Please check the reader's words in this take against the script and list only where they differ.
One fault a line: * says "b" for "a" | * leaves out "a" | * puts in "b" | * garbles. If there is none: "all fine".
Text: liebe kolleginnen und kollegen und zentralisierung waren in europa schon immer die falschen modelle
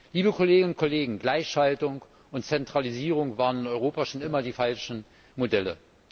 * puts in "gleichschaltung"